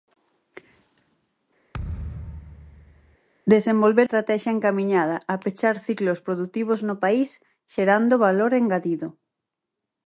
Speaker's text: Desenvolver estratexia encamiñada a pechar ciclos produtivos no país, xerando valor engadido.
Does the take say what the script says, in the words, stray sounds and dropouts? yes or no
no